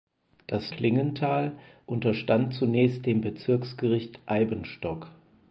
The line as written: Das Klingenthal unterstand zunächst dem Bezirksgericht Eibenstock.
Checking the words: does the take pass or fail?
pass